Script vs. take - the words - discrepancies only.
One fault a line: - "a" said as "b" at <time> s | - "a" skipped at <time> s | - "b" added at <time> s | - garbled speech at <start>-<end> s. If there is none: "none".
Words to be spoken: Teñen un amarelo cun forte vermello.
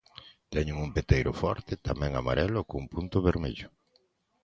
- "peteiro forte tamén" added at 1.0 s
- "forte" said as "punto" at 2.9 s